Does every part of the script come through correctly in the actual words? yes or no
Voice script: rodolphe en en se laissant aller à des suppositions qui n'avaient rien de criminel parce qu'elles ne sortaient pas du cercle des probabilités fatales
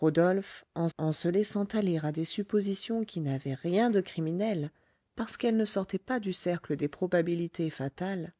yes